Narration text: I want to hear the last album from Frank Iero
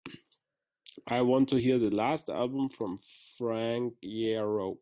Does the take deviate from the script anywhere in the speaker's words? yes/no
no